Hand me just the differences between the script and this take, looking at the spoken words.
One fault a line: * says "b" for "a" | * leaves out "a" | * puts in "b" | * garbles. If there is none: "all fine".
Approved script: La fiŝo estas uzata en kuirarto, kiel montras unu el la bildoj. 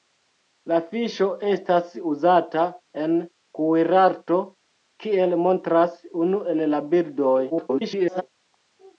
* garbles